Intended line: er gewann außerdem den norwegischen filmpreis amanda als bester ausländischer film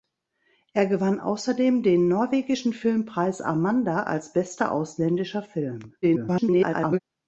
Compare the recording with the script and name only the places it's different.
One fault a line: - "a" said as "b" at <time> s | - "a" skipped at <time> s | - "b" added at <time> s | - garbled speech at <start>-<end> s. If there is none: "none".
- garbled speech at 6.0-7.0 s